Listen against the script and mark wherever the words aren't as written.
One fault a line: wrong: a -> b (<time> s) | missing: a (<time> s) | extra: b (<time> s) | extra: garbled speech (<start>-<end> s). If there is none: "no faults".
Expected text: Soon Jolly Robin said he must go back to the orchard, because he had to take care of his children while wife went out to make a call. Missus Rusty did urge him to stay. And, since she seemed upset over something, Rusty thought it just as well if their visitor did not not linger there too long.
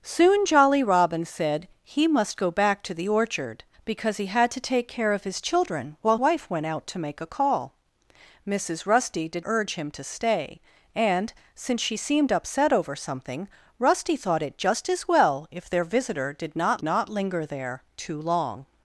no faults